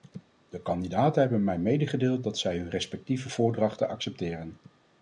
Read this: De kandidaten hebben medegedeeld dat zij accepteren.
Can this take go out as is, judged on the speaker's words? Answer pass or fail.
fail